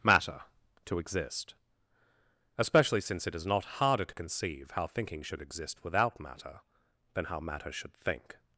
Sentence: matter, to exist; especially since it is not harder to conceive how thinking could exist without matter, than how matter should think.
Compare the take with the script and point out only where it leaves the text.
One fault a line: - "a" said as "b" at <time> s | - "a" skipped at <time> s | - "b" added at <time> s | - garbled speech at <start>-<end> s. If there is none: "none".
- "could" said as "should" at 5.2 s